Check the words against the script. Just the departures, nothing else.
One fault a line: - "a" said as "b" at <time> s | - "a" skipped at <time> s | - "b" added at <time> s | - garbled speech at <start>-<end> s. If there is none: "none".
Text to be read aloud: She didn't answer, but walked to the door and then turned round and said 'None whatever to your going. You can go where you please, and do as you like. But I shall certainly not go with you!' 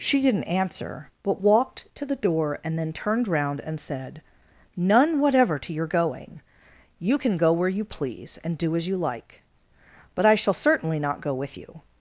none